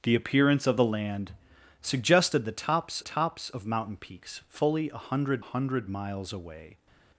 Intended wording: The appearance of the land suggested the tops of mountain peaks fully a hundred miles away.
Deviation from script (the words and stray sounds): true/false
true